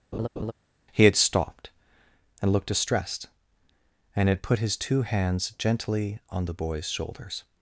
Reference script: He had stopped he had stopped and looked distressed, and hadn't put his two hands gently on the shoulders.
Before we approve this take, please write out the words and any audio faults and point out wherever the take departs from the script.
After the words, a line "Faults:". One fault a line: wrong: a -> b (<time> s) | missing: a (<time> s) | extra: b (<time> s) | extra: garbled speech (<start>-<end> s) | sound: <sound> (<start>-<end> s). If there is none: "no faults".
He had stopped and looked distressed, and had put his two hands gently on the boy's shoulders.
Faults:
sound: laugh (0.1-0.5 s)
missing: he had stopped (1.7 s)
wrong: hadn't -> had (4.3 s)
extra: boy's (6.5 s)